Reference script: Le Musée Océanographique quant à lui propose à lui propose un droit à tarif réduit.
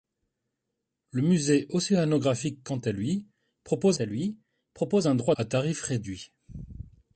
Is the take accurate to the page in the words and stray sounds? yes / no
yes